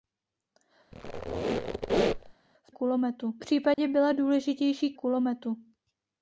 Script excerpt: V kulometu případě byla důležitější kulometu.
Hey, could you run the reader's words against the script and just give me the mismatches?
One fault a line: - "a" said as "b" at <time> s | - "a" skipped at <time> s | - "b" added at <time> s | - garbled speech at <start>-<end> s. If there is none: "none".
none